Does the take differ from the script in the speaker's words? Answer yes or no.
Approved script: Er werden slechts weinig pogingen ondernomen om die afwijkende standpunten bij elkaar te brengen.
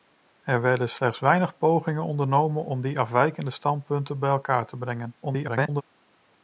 yes